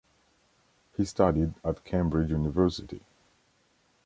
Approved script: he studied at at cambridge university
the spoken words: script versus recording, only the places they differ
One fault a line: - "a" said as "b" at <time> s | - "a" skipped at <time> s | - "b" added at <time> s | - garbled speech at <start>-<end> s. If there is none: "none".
- "at" skipped at 1.8 s